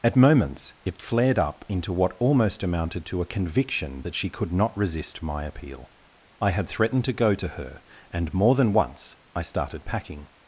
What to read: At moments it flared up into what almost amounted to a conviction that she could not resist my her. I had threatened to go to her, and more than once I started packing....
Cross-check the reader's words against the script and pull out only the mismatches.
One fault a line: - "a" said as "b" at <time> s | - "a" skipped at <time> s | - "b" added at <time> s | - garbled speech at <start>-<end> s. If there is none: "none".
- "her" said as "appeal" at 5.4 s